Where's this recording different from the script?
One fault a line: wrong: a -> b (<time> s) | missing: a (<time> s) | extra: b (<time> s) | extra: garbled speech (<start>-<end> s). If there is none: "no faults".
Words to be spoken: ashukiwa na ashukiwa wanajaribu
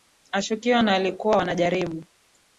wrong: ashukiwa -> walikuwa (0.9 s)